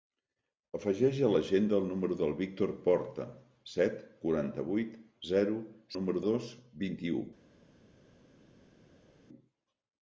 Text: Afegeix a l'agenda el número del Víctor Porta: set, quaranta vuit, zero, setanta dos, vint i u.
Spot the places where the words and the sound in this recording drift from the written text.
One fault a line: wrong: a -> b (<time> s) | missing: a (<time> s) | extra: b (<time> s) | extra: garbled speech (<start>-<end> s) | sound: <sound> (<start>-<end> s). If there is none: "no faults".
wrong: setanta -> número (5.9 s)